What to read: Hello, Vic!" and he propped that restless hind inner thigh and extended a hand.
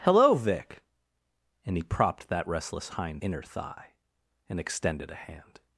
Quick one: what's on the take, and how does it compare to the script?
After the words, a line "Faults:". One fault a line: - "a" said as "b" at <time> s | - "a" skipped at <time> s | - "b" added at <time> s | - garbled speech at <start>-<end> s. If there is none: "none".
Hello, Vic!" and he propped that restless hind inner thigh and extended a hand.
Faults:
none